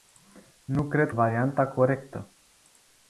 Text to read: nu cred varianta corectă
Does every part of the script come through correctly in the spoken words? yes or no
yes